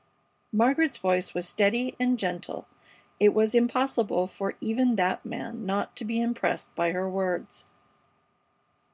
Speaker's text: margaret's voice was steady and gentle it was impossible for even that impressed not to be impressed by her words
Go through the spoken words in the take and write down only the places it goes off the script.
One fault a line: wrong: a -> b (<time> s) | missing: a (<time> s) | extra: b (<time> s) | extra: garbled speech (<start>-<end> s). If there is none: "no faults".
wrong: impressed -> man (5.2 s)